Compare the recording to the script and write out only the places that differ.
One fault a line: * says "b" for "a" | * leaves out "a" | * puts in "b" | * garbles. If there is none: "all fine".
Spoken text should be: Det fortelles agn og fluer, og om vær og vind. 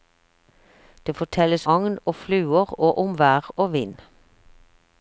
all fine